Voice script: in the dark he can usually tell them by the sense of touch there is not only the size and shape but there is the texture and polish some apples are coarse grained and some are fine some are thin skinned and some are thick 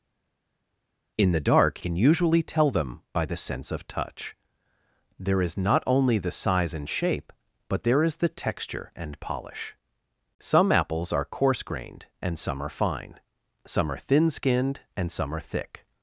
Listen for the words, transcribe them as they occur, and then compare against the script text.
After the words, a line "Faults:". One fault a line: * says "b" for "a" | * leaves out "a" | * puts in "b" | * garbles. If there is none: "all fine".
in the dark can usually tell them by the sense of touch there is not only the size and shape but there is the texture and polish some apples are coarse grained and some are fine some are thin skinned and some are thick
Faults:
* leaves out "he"